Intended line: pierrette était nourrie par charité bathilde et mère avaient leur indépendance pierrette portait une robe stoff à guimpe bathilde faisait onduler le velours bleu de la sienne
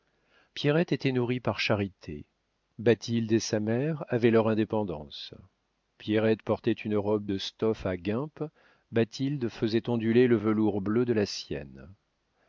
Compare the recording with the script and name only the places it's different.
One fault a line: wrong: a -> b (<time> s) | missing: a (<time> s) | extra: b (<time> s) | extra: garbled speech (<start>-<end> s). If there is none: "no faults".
extra: sa (3.4 s)
extra: de (7.2 s)